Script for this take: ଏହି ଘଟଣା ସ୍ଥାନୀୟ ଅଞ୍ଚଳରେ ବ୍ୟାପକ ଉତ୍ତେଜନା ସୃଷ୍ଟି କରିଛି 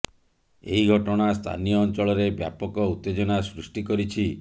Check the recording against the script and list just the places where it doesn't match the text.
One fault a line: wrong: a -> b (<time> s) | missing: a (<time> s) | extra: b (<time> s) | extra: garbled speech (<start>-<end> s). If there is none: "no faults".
no faults